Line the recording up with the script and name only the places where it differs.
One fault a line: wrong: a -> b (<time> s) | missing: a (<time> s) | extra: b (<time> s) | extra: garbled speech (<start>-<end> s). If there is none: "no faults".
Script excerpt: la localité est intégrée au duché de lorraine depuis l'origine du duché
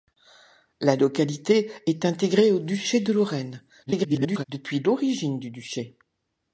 extra: garbled speech (3.9-4.4 s)